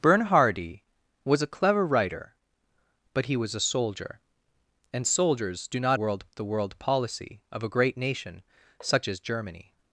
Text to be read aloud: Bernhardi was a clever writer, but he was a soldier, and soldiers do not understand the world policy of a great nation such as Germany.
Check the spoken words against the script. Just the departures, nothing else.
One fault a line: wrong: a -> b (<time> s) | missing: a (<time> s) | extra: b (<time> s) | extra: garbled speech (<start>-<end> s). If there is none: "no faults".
wrong: understand -> world (5.9 s)